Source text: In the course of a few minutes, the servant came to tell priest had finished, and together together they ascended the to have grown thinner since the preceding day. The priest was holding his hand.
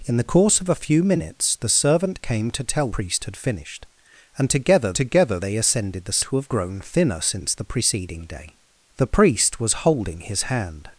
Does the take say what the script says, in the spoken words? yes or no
yes